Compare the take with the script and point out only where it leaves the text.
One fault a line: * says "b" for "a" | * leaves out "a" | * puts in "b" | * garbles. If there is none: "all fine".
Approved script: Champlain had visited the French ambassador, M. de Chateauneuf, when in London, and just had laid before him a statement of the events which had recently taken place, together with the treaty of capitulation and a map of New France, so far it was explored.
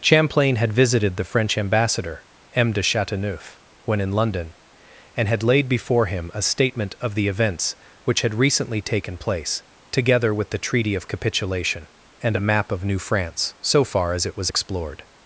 * leaves out "just"
* puts in "as"